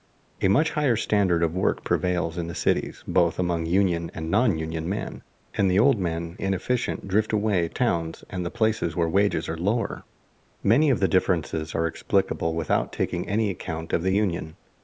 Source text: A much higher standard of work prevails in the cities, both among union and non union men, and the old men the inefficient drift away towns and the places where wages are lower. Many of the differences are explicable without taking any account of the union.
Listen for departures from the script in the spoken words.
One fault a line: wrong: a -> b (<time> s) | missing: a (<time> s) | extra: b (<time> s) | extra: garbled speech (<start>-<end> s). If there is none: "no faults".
no faults